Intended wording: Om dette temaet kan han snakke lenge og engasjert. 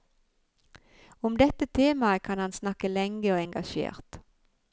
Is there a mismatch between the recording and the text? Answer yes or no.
no